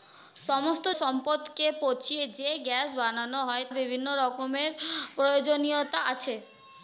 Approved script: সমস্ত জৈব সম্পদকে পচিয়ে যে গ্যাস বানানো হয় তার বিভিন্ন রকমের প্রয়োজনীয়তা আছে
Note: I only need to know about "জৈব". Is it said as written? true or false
false